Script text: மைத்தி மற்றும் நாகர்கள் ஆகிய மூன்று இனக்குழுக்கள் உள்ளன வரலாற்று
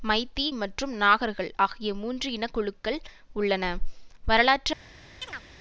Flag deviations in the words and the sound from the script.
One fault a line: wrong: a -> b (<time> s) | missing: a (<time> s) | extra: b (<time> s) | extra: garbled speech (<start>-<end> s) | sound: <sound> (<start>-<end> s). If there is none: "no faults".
sound: chirp (5.2-5.4 s)